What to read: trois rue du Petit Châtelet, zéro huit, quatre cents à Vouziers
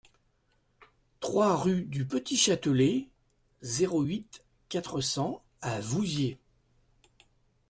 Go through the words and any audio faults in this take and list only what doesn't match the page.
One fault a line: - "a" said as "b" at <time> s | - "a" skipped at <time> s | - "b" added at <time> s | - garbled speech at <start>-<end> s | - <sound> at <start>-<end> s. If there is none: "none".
none